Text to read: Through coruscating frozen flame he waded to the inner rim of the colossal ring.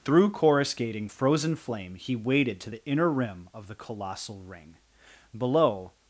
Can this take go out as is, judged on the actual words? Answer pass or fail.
fail